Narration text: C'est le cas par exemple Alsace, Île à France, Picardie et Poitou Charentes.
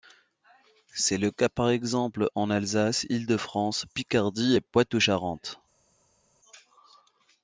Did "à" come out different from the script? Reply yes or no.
yes